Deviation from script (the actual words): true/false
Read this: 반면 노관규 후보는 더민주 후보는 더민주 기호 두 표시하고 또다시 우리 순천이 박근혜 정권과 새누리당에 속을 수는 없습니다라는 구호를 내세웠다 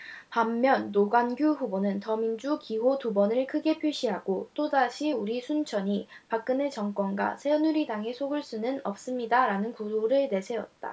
true